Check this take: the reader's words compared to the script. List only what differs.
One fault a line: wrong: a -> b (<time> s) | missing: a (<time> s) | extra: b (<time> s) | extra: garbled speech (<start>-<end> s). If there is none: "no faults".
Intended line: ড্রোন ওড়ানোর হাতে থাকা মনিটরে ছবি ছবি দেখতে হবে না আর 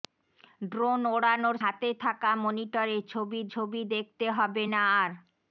no faults